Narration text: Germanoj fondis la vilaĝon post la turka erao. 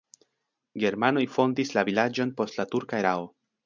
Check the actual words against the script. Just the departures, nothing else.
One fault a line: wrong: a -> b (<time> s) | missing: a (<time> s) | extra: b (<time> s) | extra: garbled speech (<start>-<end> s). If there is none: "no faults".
no faults